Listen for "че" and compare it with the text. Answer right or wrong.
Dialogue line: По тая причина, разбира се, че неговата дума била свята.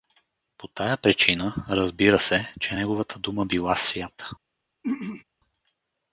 right